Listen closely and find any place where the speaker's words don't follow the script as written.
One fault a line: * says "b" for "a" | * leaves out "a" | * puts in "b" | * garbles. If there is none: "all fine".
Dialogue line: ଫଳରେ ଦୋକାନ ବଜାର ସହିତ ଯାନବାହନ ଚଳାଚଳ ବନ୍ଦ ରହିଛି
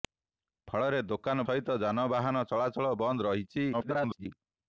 * leaves out "ବଜାର"
* garbles